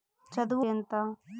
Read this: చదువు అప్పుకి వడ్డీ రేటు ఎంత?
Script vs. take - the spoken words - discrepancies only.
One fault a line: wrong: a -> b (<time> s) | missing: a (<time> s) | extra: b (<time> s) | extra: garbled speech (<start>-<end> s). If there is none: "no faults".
missing: అప్పుకి వడ్డీ రేటు (0.7 s)